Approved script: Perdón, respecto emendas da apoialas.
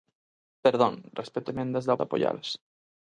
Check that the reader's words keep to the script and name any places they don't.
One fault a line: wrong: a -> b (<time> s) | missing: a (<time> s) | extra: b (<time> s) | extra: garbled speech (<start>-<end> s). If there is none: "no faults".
no faults